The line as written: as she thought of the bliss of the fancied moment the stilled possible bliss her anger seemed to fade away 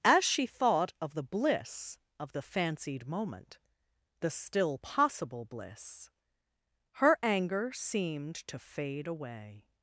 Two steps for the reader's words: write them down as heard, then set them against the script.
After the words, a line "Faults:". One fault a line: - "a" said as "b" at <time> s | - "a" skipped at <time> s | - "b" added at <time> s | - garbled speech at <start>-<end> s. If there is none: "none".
as she thought of the bliss of the fancied moment the still possible bliss her anger seemed to fade away
Faults:
- "stilled" said as "still" at 4.3 s